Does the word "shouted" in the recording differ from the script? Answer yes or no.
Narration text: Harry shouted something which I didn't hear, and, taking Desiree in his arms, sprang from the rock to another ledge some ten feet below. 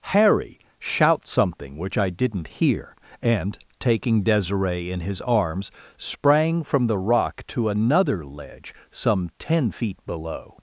yes